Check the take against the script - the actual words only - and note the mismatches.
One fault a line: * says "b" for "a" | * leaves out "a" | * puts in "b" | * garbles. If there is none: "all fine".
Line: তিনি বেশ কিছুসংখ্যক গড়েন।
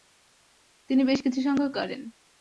all fine